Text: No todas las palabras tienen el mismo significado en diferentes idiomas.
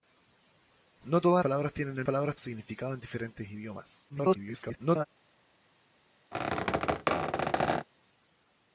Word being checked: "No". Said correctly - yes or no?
yes